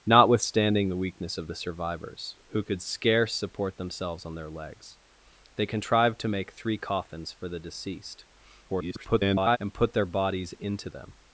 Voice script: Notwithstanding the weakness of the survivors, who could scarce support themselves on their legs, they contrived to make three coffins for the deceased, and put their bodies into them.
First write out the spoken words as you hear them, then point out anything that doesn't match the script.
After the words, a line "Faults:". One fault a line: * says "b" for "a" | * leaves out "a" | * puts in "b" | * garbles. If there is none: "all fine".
Notwithstanding the weakness of the survivors, who could scarce support themselves on their legs, they contrived to make three coffins for the deceased, [garbled] and put their bodies into them.
Faults:
* garbles